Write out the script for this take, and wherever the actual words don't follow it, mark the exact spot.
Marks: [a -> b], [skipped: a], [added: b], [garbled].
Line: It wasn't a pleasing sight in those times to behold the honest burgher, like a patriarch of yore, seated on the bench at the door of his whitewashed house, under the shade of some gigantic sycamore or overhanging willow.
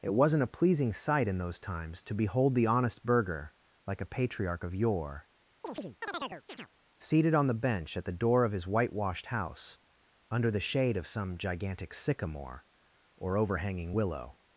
It wasn't a pleasing sight in those times to behold the honest burgher, like a patriarch of yore, seated on the bench at the door of his whitewashed house, under the shade of some gigantic sycamore or overhanging willow.